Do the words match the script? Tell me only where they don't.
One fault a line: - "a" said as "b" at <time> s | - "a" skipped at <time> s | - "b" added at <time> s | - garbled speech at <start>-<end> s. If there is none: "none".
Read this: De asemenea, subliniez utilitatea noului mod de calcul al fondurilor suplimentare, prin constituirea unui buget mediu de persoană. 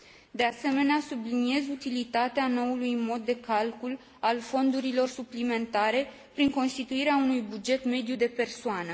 none